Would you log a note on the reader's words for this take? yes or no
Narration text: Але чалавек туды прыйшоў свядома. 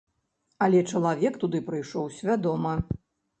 no